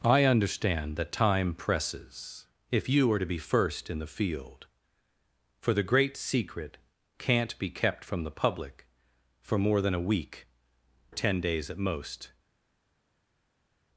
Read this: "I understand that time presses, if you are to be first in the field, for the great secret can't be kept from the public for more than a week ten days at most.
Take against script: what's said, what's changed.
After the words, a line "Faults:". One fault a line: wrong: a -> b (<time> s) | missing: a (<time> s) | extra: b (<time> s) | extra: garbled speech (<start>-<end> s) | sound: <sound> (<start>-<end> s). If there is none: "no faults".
"I understand that time presses, if you are to be first in the field, for the great secret can't be kept from the public for more than a week ten days at most.
Faults:
no faults